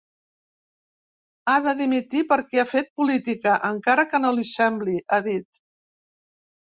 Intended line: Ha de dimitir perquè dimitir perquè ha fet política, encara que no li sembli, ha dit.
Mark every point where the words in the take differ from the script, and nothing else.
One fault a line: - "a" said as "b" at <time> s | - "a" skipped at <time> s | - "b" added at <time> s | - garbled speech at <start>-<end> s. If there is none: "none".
- "dimitir perquè" skipped at 2.6 s